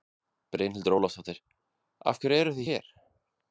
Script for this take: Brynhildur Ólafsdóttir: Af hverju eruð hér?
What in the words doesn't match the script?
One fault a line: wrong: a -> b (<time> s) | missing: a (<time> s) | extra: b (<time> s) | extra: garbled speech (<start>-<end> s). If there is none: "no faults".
no faults